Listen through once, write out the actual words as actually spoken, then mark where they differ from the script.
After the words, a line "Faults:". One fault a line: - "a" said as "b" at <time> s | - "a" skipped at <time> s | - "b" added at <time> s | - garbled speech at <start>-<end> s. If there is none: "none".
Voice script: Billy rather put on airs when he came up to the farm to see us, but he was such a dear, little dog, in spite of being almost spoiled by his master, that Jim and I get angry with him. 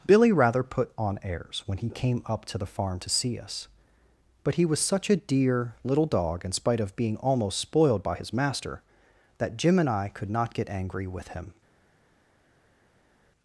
Billy rather put on airs when he came up to the farm to see us, but he was such a dear, little dog, in spite of being almost spoiled by his master, that Jim and I could not get angry with him.
Faults:
- "could not" added at 10.1 s